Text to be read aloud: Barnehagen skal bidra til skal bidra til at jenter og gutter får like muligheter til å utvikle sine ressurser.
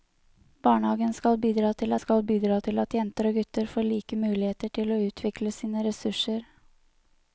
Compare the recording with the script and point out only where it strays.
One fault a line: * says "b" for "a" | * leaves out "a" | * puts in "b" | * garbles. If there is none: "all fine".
all fine